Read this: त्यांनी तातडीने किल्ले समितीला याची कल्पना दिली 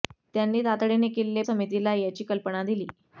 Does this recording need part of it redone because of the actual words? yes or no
no